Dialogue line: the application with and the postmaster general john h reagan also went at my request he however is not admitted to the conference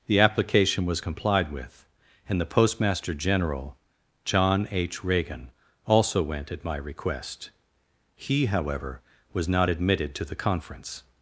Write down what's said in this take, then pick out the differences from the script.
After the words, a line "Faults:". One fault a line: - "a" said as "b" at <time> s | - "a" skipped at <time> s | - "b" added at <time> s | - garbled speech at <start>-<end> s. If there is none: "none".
the application was complied with and the postmaster general john h reagan also went at my request he however was not admitted to the conference
Faults:
- "was complied" added at 0.8 s
- "is" said as "was" at 9.3 s